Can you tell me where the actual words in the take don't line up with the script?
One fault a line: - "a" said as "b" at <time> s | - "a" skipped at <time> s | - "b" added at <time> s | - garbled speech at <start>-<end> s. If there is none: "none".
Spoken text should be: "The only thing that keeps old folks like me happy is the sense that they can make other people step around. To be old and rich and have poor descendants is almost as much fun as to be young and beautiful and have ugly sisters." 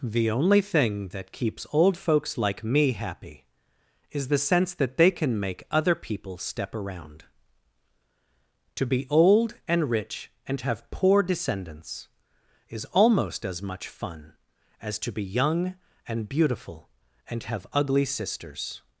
none